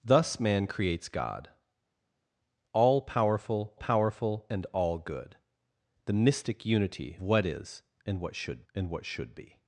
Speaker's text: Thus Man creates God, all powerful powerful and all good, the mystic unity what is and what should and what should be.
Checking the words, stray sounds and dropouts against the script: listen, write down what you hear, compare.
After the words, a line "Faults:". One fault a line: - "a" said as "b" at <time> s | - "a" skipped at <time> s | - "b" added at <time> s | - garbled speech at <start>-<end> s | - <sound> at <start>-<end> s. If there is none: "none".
Thus Man creates God, all powerful powerful and all good, the mystic unity what is and what should and what should be.
Faults:
none